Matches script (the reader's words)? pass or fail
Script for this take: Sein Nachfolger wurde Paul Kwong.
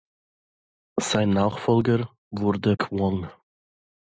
fail